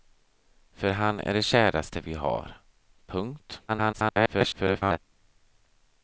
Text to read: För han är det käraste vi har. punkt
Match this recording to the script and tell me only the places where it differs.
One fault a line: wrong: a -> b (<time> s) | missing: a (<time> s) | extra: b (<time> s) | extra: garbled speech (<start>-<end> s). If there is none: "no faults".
extra: garbled speech (3.7-5.0 s)